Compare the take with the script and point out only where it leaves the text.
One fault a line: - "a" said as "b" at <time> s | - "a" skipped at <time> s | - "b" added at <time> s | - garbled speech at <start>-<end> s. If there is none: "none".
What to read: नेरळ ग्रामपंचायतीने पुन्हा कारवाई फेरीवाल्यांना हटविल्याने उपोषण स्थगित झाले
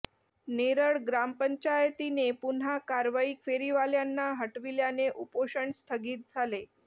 none